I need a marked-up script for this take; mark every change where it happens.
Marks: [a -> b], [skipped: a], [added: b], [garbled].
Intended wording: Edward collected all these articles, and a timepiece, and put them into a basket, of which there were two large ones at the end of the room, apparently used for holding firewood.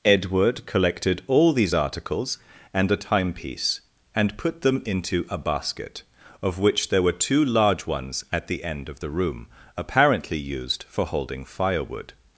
Edward collected all these articles, and a timepiece, and put them into a basket, of which there were two large ones at the end of the room, apparently used for holding firewood.